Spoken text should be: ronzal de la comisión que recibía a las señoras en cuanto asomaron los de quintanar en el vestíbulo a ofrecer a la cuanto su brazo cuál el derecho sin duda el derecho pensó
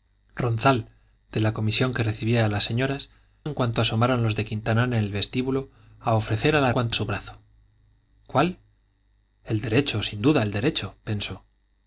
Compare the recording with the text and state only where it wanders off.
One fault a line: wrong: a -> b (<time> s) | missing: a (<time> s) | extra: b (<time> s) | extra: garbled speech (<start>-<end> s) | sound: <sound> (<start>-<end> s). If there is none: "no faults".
no faults